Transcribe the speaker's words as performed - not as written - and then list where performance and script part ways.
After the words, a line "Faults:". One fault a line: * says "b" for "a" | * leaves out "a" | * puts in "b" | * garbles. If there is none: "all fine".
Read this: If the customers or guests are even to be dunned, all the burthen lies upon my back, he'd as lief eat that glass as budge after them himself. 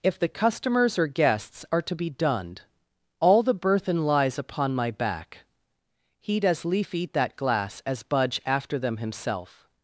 If the customers or guests are to be dunned, all the burthen lies upon my back, he'd as lief eat that glass as budge after them himself.
Faults:
* leaves out "even"